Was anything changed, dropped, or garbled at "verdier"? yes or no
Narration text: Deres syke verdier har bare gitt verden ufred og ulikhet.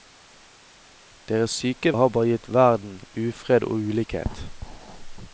yes